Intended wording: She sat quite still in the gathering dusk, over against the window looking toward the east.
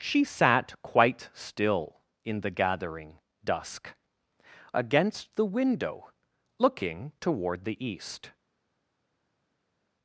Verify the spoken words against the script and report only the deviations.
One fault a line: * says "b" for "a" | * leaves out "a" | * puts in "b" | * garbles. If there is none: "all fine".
* leaves out "over"